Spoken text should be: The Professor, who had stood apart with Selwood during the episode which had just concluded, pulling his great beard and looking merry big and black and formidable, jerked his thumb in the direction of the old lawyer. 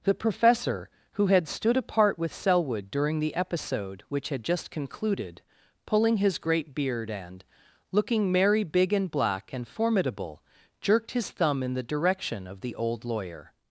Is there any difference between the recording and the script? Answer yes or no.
no